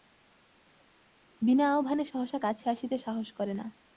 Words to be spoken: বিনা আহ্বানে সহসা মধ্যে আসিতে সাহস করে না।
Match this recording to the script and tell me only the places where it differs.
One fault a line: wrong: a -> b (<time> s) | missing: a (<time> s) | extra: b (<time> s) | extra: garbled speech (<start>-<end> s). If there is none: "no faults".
wrong: মধ্যে -> কাছে (2.4 s)